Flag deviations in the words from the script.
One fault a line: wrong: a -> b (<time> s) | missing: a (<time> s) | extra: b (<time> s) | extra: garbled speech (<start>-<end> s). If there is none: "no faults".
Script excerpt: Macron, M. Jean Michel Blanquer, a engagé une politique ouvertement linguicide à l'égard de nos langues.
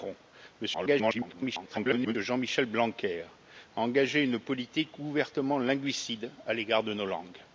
extra: garbled speech (0.7-2.2 s)